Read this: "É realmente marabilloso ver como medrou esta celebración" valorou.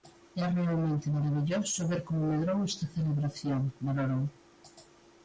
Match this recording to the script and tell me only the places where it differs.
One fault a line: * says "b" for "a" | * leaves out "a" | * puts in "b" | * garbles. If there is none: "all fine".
all fine